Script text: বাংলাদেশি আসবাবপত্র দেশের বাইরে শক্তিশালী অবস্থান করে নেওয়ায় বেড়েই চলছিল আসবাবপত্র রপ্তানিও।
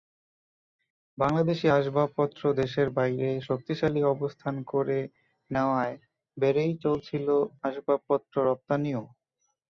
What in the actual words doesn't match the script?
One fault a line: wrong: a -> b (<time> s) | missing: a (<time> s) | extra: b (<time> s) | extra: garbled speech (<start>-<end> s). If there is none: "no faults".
no faults